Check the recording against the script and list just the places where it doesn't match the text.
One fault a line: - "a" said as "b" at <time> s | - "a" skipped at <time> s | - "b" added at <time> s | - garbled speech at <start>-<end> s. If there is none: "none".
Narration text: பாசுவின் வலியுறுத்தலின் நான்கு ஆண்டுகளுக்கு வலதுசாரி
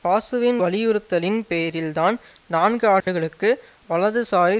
- "பேரில்தான்" added at 1.5 s